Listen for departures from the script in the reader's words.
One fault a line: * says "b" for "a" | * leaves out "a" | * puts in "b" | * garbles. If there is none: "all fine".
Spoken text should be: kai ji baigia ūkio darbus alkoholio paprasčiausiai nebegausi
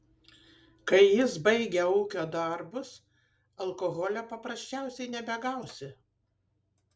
* says "jis" for "ji"